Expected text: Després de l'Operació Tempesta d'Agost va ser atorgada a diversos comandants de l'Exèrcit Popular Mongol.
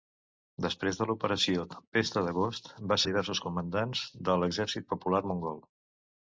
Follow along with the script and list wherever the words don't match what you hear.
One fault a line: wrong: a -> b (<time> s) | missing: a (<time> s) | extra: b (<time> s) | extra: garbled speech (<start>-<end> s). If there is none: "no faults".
missing: ser atorgada (3.0 s)